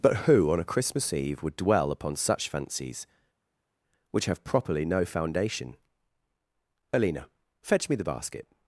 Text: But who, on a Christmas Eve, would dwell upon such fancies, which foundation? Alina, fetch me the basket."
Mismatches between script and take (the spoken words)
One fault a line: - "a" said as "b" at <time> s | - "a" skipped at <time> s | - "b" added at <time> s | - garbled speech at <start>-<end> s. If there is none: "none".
- "have properly no" added at 4.3 s